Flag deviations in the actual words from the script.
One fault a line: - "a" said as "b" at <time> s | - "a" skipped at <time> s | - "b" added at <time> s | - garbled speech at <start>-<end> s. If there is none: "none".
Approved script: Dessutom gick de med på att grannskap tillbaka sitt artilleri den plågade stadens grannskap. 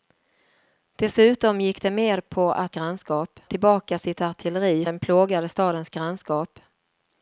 none